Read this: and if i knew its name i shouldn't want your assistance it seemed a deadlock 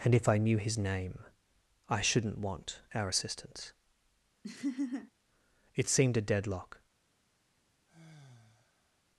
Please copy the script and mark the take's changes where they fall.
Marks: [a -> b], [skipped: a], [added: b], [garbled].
and if i knew [its -> his] name i shouldn't want [your -> our] assistance it seemed a deadlock